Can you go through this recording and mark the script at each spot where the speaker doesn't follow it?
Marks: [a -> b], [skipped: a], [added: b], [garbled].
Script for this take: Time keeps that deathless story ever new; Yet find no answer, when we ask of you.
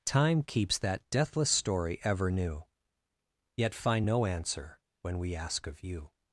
Time keeps that deathless story ever new; Yet find no answer, when we ask of you.